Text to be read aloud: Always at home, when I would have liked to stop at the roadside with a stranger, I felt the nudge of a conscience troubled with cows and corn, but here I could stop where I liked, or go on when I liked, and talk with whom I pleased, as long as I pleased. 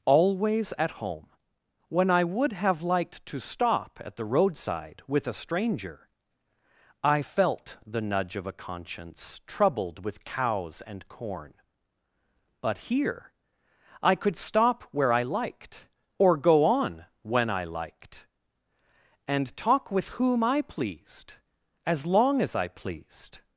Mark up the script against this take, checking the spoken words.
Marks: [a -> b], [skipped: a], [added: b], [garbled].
Always at home, when I would have liked to stop at the roadside with a stranger, I felt the nudge of a conscience troubled with cows and corn, but here I could stop where I liked, or go on when I liked, and talk with whom I pleased, as long as I pleased.